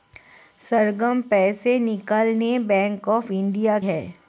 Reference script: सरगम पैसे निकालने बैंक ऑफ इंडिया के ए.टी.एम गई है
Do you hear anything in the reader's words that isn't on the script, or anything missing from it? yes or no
yes